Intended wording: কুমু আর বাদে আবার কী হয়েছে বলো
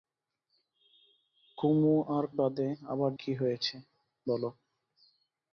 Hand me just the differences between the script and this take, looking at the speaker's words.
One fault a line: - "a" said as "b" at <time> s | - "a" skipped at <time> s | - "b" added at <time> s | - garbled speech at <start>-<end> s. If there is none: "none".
none